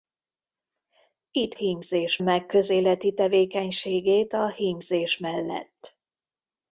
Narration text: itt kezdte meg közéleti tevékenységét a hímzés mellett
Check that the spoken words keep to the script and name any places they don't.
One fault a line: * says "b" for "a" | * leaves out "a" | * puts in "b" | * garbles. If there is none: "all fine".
* says "hímzés" for "kezdte"